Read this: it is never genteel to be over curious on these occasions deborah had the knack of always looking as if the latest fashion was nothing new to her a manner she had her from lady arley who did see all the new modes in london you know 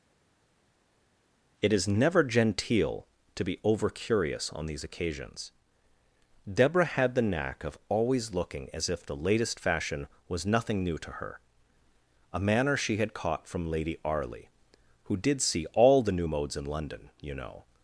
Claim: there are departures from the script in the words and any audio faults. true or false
true